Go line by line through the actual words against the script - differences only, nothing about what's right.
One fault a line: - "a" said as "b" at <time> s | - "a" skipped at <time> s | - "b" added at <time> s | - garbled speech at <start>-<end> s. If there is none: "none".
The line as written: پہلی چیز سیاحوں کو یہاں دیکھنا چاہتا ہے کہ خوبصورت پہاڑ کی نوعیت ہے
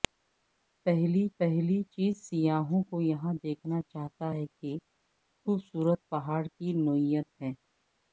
- "پہلی" added at 1.4 s